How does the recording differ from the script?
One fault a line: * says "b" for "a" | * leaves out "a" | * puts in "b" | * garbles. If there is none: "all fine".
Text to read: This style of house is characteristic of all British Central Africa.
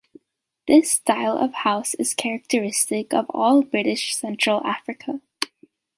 all fine